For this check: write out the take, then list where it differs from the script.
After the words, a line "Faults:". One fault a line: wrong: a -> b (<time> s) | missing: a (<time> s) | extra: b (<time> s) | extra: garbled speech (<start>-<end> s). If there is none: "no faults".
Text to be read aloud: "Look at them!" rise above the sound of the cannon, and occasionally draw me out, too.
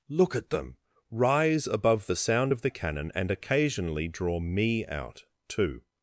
"Look at them!" rise above the sound of the cannon, and occasionally draw me out, too.
Faults:
no faults